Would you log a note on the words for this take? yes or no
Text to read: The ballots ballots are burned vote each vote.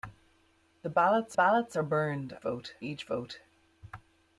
no